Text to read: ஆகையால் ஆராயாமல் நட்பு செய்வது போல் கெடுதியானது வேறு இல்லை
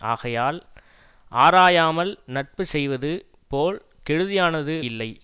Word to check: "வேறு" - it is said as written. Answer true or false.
false